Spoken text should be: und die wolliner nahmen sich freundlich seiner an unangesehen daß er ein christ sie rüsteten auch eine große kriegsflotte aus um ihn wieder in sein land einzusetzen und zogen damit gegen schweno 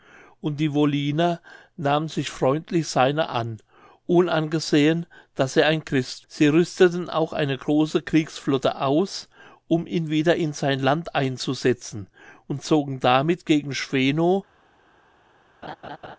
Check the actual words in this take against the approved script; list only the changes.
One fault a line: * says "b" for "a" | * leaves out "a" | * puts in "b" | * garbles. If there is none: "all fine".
all fine